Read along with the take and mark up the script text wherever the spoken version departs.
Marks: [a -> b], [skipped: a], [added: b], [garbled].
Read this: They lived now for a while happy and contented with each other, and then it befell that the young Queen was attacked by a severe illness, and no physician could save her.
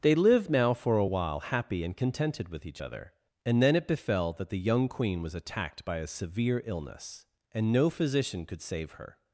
They lived now for a while happy and contented with each other, and then it befell that the young Queen was attacked by a severe illness, and no physician could save her.